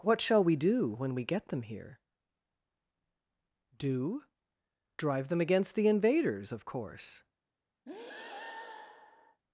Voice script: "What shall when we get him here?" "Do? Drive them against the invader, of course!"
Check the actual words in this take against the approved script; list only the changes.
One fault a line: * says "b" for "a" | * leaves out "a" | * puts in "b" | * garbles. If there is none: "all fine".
* puts in "we do"
* says "them" for "him"
* says "invaders" for "invader"